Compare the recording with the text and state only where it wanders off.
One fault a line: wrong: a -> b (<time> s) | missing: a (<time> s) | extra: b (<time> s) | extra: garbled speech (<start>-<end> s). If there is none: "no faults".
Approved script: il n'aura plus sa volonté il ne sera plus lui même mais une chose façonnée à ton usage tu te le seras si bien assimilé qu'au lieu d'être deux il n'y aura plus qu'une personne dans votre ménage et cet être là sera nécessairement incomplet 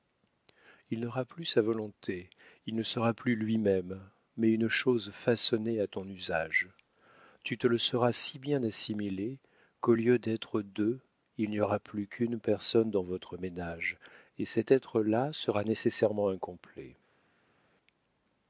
no faults